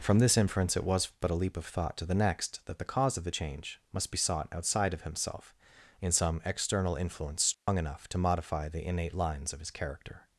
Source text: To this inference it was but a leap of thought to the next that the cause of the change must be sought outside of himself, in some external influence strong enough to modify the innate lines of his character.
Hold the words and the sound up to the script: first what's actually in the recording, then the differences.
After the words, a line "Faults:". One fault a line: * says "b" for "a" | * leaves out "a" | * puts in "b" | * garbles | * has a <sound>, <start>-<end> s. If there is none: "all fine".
From this inference it was but a leap of thought to the next that the cause of the change must be sought outside of himself, in some external influence strong enough to modify the innate lines of his character.
Faults:
* says "From" for "To"
* has a dropout, 7.5-7.7 s